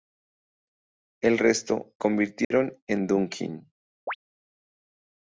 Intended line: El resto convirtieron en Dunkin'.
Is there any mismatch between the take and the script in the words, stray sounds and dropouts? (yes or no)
yes